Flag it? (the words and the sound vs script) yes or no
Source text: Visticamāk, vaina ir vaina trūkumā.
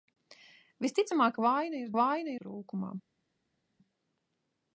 no